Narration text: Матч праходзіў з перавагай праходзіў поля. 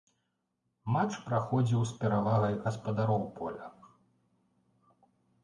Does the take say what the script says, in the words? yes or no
no